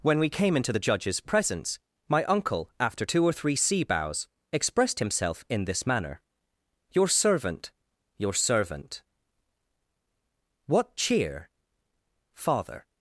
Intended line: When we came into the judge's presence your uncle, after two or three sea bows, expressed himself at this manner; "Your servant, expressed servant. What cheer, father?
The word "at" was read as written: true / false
false